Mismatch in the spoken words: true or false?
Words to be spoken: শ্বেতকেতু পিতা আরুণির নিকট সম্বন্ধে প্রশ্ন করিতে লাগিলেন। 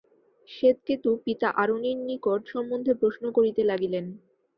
false